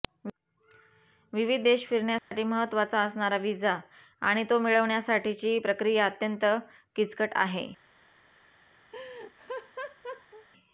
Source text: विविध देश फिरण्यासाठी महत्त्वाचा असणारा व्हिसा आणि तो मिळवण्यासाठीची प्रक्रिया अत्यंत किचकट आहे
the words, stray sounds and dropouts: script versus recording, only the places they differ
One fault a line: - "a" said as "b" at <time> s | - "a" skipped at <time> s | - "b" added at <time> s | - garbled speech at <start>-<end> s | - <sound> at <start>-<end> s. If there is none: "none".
- dropout at 2.2-2.3 s
- laugh at 8.9-10.5 s